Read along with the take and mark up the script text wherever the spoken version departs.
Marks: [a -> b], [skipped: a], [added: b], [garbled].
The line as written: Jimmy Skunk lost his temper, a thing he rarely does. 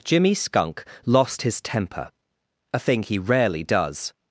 Jimmy Skunk lost his temper, a thing he rarely does.